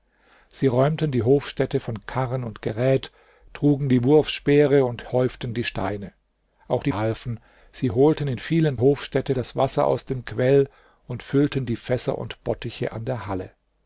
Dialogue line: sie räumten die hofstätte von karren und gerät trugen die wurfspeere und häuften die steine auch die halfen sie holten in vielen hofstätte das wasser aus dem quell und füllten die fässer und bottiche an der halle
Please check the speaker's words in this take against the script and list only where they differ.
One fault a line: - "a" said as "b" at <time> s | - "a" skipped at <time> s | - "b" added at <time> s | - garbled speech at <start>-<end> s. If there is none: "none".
none